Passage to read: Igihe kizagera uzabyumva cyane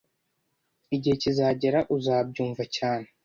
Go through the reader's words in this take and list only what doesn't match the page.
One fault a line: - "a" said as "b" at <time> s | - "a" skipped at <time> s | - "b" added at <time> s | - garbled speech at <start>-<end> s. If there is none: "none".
none